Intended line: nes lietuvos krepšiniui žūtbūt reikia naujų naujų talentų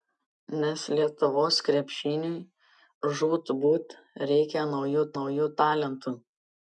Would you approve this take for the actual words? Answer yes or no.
yes